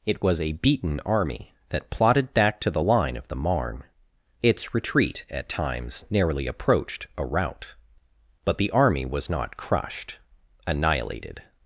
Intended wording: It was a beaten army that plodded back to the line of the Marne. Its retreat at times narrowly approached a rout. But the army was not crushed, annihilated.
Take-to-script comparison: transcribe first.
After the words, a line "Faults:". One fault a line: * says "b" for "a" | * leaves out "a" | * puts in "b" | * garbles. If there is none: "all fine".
It was a beaten army that plodded back to the line of the Marne. Its retreat at times narrowly approached a rout. But the army was not crushed, annihilated.
Faults:
all fine